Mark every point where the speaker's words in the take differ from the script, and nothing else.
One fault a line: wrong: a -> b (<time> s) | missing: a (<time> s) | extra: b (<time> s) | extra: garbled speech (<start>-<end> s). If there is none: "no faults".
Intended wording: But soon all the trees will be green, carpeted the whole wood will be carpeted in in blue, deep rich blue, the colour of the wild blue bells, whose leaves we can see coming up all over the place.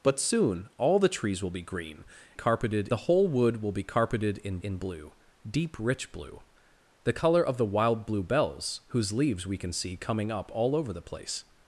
no faults